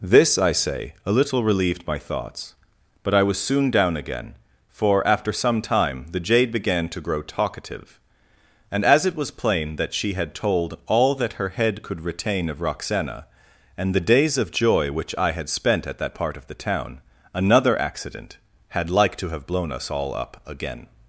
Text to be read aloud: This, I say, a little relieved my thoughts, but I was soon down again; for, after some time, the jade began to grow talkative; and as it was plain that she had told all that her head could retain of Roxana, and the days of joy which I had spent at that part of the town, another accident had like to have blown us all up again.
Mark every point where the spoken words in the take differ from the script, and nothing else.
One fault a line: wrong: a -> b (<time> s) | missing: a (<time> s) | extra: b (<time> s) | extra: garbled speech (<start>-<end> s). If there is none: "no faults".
no faults